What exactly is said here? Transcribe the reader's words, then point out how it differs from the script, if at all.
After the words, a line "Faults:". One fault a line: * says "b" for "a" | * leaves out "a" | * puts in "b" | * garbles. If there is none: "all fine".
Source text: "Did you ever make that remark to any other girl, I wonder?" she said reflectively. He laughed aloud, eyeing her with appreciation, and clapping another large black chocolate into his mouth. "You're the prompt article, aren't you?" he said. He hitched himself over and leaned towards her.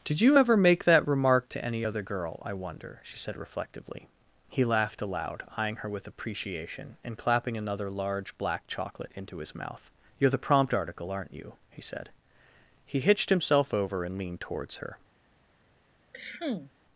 "Did you ever make that remark to any other girl, I wonder?" she said reflectively. He laughed aloud, eyeing her with appreciation, and clapping another large black chocolate into his mouth. "You're the prompt article, aren't you?" he said. He hitched himself over and leaned towards her.
Faults:
all fine